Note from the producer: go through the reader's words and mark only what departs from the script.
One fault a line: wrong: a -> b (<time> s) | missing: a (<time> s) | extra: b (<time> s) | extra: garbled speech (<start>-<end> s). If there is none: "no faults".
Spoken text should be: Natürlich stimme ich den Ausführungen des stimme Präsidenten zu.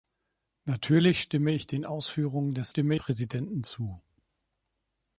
no faults